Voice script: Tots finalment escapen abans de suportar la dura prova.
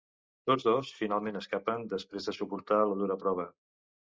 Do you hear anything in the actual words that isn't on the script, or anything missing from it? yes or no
yes